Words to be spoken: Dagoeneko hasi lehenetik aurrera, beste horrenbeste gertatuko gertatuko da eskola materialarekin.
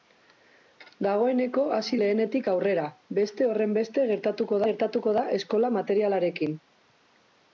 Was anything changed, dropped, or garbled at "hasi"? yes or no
no